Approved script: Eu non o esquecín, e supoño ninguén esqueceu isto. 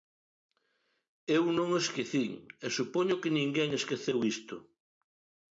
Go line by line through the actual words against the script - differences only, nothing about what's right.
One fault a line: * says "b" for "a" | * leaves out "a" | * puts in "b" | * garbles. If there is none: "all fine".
* puts in "que"